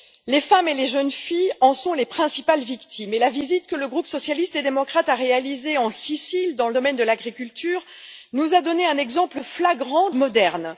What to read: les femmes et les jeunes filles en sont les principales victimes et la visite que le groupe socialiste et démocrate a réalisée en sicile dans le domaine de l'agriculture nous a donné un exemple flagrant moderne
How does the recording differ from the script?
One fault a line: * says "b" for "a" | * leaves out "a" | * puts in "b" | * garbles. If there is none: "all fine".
all fine